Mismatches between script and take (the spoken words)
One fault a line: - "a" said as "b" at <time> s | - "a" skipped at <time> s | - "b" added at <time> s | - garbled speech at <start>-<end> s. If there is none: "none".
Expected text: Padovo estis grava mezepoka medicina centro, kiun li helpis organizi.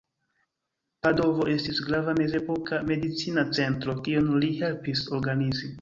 none